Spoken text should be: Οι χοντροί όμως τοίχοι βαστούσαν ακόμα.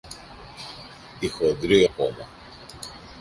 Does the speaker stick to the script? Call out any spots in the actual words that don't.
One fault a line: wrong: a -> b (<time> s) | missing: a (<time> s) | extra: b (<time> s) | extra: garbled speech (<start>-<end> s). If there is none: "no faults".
missing: όμως τοίχοι βαστούσαν (1.9 s)